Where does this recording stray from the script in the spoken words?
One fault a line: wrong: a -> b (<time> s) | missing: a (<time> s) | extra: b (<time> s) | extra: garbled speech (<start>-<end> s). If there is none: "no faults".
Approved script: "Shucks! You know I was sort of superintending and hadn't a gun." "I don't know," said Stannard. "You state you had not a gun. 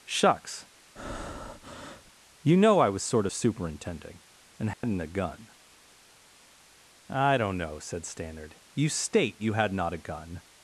no faults